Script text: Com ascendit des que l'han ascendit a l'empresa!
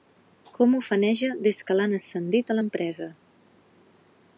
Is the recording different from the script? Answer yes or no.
yes